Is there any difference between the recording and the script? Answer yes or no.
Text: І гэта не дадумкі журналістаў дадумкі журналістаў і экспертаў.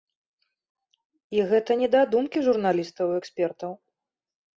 yes